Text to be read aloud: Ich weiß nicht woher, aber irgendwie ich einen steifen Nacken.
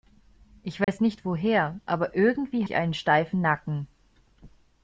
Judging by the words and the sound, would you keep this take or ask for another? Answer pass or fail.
fail